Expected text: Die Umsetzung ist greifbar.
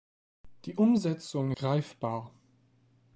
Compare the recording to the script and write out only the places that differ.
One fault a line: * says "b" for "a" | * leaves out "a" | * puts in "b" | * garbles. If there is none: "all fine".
* leaves out "ist"